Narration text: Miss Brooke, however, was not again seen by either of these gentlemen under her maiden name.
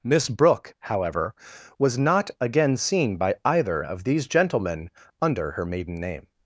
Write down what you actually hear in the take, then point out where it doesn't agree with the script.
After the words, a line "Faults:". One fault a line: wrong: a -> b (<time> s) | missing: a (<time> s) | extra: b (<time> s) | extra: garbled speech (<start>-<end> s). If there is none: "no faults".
Miss Brooke, however, was not again seen by either of these gentlemen under her maiden name.
Faults:
no faults